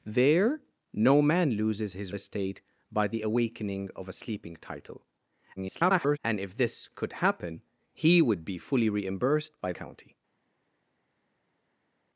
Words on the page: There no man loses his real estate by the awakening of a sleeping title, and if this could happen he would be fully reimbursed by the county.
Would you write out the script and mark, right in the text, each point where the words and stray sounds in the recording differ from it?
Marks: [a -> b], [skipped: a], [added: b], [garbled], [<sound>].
There no man loses his [skipped: real] estate by the awakening of a sleeping title, [garbled] and if this could happen he would be fully reimbursed by [skipped: the] county.